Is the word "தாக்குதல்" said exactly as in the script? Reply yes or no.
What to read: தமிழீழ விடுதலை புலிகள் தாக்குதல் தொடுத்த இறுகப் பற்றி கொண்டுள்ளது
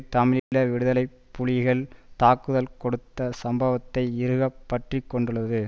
yes